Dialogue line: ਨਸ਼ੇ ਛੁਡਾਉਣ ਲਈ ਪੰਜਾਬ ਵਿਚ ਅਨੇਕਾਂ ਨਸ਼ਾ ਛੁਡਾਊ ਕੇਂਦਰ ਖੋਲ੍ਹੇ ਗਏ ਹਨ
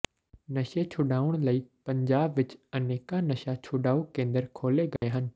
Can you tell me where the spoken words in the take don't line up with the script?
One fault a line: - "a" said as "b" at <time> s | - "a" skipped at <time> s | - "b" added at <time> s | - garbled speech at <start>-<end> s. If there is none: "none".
none